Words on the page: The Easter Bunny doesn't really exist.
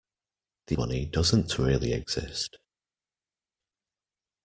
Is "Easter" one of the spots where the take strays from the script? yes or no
yes